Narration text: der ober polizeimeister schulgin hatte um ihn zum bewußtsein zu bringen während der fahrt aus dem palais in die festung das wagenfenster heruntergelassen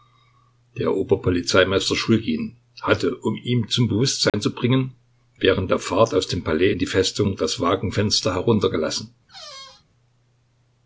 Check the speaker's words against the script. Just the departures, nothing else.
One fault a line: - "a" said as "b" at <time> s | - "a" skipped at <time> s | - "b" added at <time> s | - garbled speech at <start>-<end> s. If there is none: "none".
none